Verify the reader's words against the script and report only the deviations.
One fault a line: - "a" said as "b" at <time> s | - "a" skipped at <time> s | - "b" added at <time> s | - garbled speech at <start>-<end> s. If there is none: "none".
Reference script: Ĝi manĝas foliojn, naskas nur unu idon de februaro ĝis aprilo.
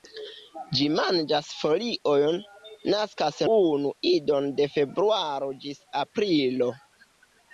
- "nur" skipped at 3.4 s